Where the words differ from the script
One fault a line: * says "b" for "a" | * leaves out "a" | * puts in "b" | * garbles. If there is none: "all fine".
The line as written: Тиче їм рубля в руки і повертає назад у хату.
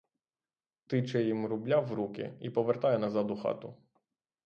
all fine